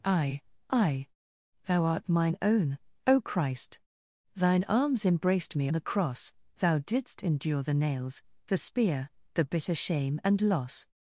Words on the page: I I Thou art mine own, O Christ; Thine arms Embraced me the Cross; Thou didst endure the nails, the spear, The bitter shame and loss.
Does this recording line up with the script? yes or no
yes